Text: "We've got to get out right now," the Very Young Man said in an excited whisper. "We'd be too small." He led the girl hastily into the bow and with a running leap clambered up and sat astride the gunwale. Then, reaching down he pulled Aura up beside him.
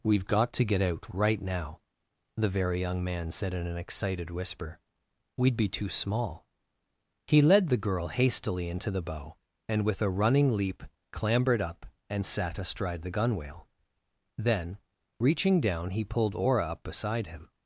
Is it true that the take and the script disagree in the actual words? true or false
false